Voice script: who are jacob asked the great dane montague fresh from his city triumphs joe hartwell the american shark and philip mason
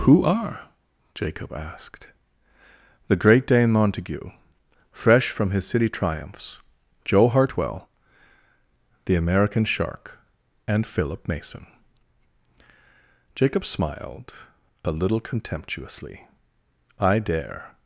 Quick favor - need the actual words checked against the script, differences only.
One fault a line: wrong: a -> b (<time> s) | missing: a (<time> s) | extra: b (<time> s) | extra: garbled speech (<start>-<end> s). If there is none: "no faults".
extra: jacob smiled a little contemptuously i dare (13.3 s)